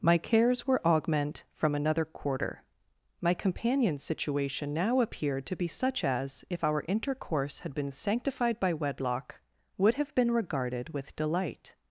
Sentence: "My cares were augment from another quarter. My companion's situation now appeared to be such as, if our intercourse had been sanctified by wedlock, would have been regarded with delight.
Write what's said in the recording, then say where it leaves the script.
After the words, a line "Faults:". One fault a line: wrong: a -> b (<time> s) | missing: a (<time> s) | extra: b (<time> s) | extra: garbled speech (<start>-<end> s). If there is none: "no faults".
"My cares were augment from another quarter. My companion's situation now appeared to be such as, if our intercourse had been sanctified by wedlock, would have been regarded with delight.
Faults:
no faults